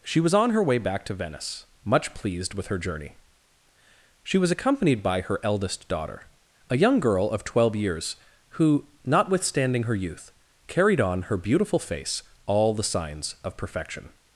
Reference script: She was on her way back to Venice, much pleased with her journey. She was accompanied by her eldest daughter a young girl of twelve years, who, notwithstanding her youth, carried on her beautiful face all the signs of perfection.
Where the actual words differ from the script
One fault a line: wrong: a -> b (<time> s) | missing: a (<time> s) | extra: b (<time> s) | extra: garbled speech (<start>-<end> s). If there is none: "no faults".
no faults